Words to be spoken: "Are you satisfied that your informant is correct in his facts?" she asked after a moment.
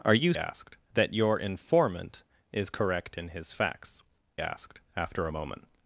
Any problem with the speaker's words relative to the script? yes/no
yes